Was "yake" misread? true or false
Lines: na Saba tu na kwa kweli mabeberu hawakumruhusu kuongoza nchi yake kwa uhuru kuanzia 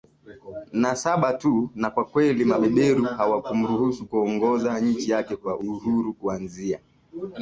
false